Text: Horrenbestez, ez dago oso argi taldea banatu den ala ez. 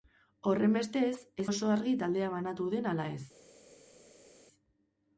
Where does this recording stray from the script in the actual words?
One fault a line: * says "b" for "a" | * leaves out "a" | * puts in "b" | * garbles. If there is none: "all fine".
* leaves out "dago"